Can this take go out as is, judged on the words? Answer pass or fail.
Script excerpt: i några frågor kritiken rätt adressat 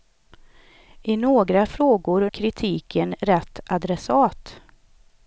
pass